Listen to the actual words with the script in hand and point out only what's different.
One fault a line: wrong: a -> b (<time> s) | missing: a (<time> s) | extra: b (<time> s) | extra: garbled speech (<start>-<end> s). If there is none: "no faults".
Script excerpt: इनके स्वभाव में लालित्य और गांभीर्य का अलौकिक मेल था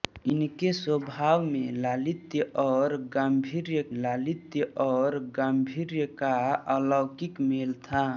extra: लालित्य और गांभीर्य (3.9 s)